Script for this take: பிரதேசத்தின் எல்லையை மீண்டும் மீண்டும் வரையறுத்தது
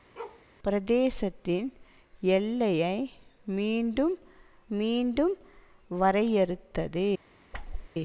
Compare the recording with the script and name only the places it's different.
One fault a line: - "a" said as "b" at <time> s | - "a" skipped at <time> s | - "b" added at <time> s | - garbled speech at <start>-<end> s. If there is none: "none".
none